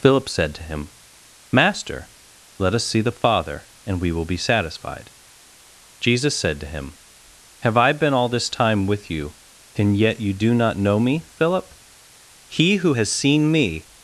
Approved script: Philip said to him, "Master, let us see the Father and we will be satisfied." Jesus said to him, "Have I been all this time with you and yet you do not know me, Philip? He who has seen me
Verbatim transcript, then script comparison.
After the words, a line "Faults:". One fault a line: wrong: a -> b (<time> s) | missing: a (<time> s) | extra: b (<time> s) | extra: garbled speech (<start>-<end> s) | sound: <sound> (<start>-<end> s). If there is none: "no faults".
Philip said to him, "Master, let us see the Father and we will be satisfied." Jesus said to him, "Have I been all this time with you and yet you do not know me, Philip? He who has seen me
Faults:
no faults